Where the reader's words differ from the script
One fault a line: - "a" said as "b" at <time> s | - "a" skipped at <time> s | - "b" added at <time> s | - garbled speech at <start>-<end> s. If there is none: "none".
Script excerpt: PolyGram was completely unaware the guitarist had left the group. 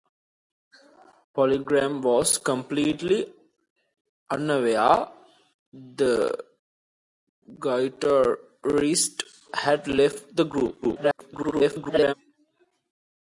- garbled speech at 10.8-12.1 s